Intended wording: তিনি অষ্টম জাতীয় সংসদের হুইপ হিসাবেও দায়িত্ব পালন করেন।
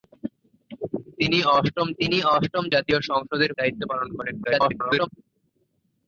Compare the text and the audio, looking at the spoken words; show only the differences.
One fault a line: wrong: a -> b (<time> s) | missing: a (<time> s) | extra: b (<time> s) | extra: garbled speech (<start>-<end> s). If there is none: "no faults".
extra: তিনি অষ্টম (2.0 s)
missing: হুইপ হিসাবেও (3.5 s)
extra: garbled speech (4.4-5.1 s)